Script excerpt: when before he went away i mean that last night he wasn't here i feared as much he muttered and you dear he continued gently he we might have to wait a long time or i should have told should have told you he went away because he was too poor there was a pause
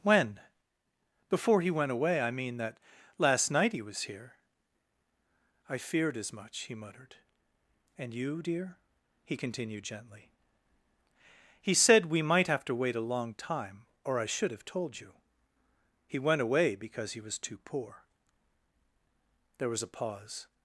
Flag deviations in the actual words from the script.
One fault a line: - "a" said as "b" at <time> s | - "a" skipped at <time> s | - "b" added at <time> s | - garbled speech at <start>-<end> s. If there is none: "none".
- "wasn't" said as "was" at 3.8 s
- "said" added at 11.7 s
- "should have told" skipped at 15.0 s